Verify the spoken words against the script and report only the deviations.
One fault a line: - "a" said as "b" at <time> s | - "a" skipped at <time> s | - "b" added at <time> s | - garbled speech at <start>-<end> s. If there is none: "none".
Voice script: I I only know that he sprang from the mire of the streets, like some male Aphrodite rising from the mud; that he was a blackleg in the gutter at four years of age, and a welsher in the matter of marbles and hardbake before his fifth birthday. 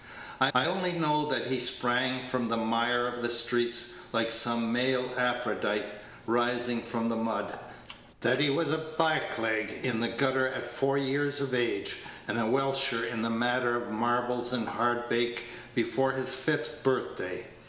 none